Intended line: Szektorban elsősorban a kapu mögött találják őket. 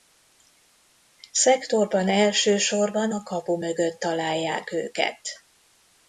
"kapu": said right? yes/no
yes